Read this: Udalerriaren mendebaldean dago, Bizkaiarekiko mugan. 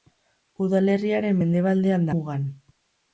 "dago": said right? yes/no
no